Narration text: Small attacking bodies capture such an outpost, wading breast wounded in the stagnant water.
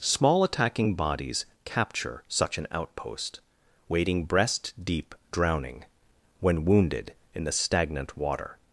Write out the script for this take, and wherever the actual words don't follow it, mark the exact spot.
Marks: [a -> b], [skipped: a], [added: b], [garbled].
Small attacking bodies capture such an outpost, wading breast [added: deep drowning when] wounded in the stagnant water.